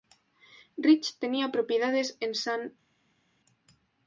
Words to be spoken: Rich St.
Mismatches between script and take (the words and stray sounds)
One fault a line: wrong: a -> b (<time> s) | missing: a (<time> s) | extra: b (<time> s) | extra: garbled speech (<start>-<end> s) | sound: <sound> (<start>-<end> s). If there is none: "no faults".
extra: tenía propiedades en (1.2 s)